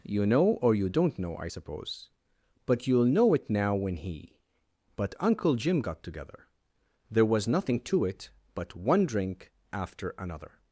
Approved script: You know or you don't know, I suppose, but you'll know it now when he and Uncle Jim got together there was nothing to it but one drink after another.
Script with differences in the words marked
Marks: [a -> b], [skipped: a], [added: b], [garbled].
You know or you don't know, I suppose, but you'll know it now when he [and -> but] Uncle Jim got together there was nothing to it but one drink after another.